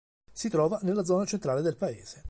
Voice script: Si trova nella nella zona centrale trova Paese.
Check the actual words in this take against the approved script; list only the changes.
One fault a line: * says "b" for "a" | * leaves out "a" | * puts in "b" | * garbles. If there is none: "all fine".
* leaves out "nella"
* says "del" for "trova"